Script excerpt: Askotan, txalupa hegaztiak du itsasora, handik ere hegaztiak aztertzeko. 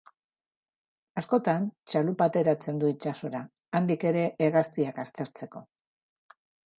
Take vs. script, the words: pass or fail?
fail